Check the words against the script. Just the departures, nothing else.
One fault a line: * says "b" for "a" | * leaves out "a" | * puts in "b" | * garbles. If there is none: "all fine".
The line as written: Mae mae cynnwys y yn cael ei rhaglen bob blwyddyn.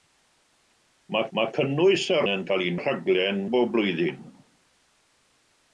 all fine